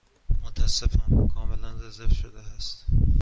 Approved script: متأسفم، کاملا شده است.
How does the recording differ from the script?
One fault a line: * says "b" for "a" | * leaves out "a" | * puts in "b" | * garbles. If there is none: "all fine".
* puts in "رزرو"